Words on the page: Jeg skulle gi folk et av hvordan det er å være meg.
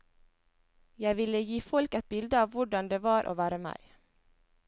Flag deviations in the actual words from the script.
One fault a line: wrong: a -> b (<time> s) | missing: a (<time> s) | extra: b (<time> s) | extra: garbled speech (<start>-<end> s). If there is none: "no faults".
wrong: skulle -> ville (1.2 s)
extra: bilde (2.1 s)
wrong: er -> var (3.1 s)